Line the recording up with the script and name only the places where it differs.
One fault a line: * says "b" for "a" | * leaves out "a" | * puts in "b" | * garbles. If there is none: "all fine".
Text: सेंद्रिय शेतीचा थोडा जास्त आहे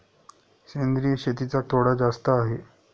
all fine